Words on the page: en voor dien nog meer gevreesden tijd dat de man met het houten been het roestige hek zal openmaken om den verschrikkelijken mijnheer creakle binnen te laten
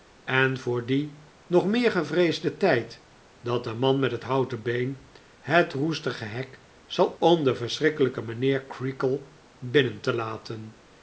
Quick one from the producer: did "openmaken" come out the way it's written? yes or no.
no